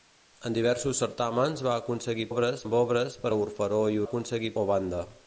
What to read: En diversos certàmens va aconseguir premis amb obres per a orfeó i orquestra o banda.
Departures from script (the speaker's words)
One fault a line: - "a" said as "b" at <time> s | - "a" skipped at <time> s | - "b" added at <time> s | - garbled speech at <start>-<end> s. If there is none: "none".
- "premis" said as "obres" at 2.3 s
- "orquestra" said as "aconseguir" at 4.1 s